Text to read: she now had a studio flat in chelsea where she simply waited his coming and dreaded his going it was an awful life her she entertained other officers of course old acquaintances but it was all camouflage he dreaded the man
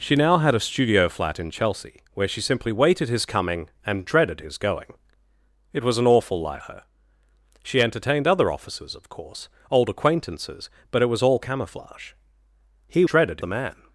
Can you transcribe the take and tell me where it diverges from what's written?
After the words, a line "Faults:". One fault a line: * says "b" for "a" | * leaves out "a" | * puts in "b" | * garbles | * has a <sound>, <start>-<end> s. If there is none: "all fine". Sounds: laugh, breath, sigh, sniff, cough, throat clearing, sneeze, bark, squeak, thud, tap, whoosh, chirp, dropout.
she now had a studio flat in chelsea where she simply waited his coming and dreaded his going it was an awful life her she entertained other officers of course old acquaintances but it was all camouflage he dreaded the man
Faults:
all fine